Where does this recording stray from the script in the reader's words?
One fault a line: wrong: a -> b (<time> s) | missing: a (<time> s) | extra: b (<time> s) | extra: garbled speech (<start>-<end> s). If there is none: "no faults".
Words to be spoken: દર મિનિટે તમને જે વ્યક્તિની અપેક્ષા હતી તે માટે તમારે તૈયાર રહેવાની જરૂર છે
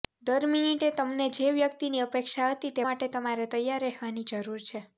no faults